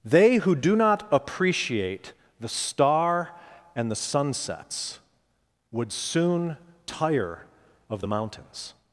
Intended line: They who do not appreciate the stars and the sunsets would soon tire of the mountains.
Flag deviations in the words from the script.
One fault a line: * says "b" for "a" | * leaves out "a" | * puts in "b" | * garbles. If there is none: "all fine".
* says "star" for "stars"